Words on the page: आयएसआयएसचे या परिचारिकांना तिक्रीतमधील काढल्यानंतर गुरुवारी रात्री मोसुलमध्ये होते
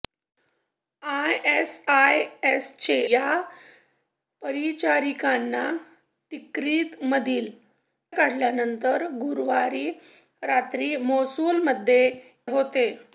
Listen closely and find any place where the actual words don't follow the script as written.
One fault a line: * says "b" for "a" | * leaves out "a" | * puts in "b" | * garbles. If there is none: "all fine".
all fine